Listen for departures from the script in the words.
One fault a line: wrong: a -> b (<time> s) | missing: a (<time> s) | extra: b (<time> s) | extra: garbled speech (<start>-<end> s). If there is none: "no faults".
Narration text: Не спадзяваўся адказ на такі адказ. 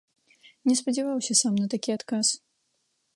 wrong: адказ -> сам (1.4 s)